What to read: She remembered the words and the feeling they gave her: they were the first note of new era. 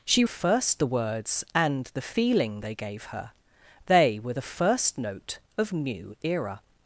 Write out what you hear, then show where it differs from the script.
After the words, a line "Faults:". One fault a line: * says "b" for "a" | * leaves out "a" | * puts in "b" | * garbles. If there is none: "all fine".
She first the words and the feeling they gave her: they were the first note of new era.
Faults:
* says "first" for "remembered"